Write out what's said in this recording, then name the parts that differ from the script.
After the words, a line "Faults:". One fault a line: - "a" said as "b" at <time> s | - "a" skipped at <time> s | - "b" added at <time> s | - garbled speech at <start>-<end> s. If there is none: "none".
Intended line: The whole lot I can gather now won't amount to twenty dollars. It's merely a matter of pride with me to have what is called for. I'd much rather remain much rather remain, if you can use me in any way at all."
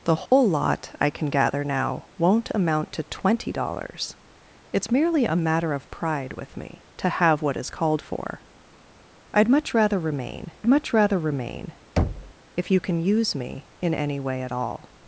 The whole lot I can gather now won't amount to twenty dollars. It's merely a matter of pride with me to have what is called for. I'd much rather remain much rather remain, if you can use me in any way at all."
Faults:
none